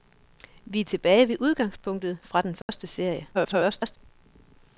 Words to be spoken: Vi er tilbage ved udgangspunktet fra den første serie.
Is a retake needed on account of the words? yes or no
yes